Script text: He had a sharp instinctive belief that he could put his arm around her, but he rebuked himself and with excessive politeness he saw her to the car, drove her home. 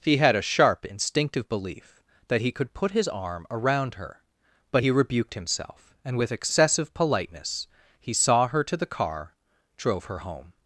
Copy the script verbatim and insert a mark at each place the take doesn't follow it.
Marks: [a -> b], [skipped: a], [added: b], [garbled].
He had a sharp instinctive belief that he could put his arm around her, but he rebuked himself and with excessive politeness he saw her to the car, drove her home.